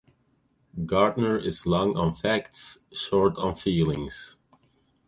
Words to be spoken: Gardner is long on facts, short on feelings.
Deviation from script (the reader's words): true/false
false